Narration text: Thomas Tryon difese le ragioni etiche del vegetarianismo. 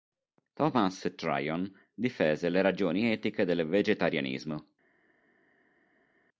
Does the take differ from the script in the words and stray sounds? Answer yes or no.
no